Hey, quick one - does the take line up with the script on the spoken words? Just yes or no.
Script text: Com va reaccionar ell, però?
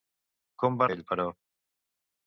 no